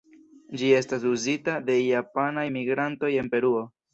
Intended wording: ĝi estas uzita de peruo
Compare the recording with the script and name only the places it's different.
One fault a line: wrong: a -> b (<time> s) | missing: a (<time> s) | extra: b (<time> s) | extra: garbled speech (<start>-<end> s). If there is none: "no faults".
extra: japanaj migrantoj en (1.8 s)